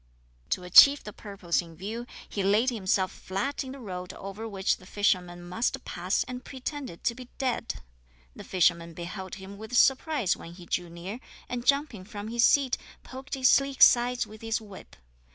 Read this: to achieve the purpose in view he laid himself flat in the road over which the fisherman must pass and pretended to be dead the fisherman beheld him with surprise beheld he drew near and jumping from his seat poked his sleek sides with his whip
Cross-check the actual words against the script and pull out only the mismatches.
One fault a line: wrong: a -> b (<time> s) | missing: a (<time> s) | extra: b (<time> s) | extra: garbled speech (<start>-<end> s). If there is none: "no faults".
wrong: beheld -> when (10.4 s)